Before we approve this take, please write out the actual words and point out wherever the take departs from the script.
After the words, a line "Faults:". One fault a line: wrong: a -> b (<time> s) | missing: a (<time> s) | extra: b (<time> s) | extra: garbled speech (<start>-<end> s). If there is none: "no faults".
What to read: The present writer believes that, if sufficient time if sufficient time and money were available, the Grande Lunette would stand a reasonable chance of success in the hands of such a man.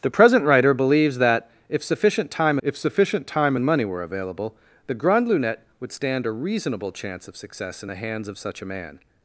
The present writer believes that, if sufficient time if sufficient time and money were available, the Grande Lunette would stand a reasonable chance of success in the hands of such a man.
Faults:
no faults